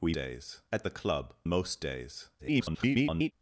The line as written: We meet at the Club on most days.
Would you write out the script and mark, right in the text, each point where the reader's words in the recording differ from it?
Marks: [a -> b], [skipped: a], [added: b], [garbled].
We [meet -> days] at the Club [skipped: on] most days. [garbled]